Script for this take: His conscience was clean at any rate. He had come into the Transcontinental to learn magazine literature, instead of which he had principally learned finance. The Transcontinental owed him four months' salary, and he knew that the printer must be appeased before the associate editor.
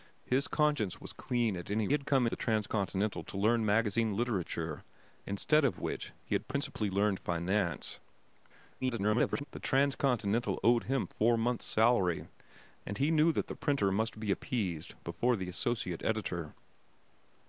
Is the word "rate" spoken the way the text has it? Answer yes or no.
no